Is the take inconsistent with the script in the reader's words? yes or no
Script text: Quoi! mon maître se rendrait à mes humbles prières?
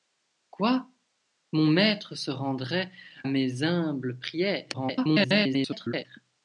yes